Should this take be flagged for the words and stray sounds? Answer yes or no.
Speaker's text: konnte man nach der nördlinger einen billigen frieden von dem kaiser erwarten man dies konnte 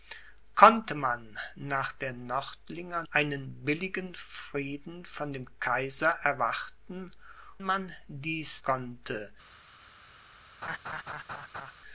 yes